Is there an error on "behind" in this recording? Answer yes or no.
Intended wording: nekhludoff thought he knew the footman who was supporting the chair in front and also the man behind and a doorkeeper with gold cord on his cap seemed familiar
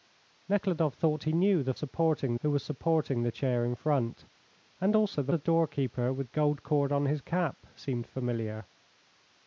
yes